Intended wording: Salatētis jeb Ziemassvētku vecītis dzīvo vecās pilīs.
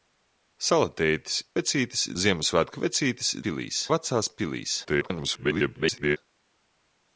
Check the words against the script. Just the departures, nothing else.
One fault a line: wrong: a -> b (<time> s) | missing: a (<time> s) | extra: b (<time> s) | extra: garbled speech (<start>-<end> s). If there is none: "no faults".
wrong: jeb -> vecītis (1.6 s)
wrong: dzīvo -> pilīs (3.4 s)
extra: garbled speech (4.8-6.2 s)